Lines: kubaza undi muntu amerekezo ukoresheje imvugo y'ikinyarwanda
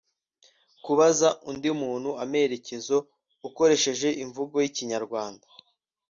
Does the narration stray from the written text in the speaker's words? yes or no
no